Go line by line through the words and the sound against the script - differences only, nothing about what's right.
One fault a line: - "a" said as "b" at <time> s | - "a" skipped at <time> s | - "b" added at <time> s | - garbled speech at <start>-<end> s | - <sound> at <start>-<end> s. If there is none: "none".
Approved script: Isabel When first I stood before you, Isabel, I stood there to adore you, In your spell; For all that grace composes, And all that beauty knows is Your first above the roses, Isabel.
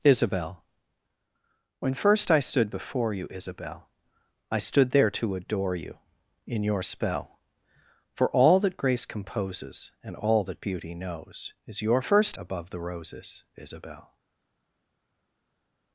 none